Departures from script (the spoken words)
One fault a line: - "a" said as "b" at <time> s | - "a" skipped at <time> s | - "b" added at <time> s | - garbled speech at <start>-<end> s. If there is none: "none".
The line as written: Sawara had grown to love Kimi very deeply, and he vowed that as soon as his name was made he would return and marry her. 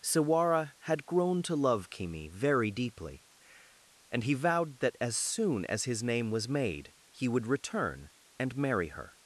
none